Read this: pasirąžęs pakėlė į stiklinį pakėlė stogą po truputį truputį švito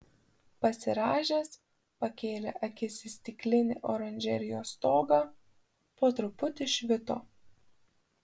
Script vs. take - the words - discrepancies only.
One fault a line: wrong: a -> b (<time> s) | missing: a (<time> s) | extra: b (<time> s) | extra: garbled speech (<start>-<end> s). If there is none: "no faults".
extra: akis (2.7 s)
wrong: pakėlė -> oranžerijos (4.0 s)
missing: truputį (6.7 s)